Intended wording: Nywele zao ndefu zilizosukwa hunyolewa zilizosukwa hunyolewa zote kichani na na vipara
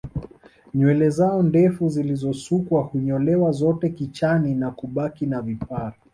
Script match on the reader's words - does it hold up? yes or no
no